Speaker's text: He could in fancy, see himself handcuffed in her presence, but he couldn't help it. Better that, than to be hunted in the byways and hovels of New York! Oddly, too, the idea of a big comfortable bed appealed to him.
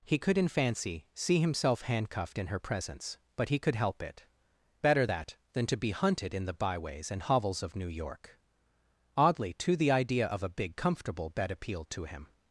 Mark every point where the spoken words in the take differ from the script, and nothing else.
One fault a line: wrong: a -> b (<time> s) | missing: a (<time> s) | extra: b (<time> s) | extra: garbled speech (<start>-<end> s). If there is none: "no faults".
wrong: couldn't -> could (3.6 s)